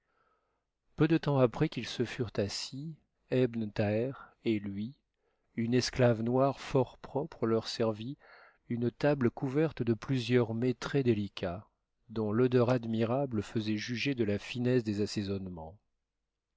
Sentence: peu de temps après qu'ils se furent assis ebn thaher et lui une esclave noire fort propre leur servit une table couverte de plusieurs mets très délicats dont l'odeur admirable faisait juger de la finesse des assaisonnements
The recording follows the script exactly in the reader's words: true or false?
true